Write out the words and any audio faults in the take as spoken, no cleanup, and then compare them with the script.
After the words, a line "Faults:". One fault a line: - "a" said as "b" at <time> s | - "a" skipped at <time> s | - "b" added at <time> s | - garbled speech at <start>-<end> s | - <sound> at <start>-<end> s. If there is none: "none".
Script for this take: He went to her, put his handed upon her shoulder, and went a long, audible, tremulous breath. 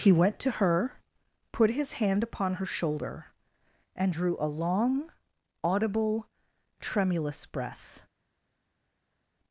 He went to her, put his hand upon her shoulder, and drew a long, audible, tremulous breath.
Faults:
- "handed" said as "hand" at 2.0 s
- "went" said as "drew" at 4.1 s